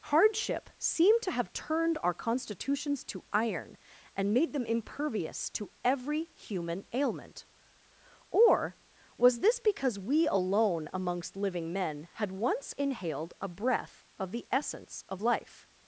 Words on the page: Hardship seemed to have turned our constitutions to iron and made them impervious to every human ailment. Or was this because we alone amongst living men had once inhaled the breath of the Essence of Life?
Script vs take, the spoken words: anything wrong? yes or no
yes